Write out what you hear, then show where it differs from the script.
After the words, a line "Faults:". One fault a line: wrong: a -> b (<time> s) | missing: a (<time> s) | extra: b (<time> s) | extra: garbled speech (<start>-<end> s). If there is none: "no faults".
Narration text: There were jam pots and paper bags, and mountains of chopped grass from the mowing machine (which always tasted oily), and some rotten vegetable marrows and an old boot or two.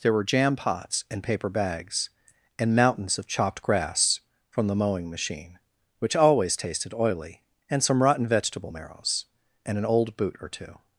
There were jam pots and paper bags, and mountains of chopped grass from the mowing machine (which always tasted oily), and some rotten vegetable marrows and an old boot or two.
Faults:
no faults